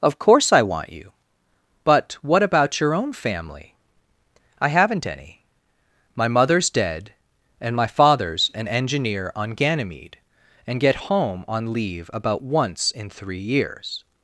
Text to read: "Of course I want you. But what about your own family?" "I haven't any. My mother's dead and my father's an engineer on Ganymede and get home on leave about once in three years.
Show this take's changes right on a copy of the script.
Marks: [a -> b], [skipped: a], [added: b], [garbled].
"Of course I want you. But what about your own family?" "I haven't any. My mother's dead and my father's an engineer on Ganymede and get home on leave about once in three years.